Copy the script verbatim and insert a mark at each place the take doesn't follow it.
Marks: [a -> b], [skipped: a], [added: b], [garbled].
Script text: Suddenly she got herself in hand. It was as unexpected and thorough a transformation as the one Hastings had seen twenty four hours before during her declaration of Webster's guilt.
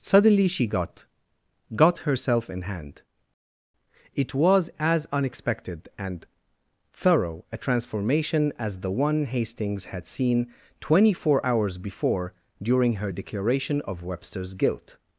Suddenly she got [added: got] herself in hand. It was as unexpected and thorough a transformation as the one Hastings had seen twenty four hours before during her declaration of Webster's guilt.